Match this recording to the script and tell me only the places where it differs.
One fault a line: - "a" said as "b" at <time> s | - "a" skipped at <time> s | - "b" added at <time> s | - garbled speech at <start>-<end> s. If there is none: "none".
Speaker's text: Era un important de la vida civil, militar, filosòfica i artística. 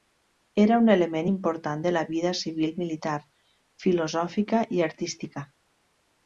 - "element" added at 0.9 s